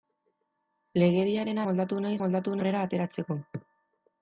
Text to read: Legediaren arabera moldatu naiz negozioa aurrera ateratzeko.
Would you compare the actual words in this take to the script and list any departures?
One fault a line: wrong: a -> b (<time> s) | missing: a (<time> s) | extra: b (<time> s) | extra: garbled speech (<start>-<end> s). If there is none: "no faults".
missing: arabera (1.6 s)
wrong: negozioa -> moldatu (2.2 s)